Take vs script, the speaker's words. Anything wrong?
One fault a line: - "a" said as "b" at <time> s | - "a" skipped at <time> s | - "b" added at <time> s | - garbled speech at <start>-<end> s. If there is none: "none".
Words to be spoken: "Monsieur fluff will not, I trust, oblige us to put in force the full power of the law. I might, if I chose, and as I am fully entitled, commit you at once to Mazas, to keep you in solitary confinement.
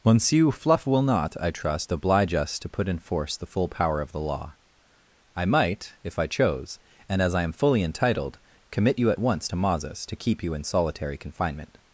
none